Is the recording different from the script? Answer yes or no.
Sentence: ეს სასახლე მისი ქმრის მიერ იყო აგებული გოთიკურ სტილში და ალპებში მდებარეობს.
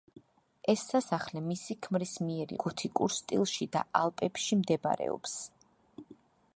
yes